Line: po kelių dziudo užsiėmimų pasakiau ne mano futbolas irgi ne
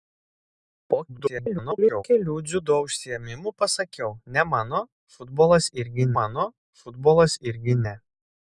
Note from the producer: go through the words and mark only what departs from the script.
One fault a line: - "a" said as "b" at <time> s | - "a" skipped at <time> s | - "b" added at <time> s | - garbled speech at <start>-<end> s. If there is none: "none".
- garbled speech at 1.1-2.0 s
- "mano futbolas irgi" added at 6.2 s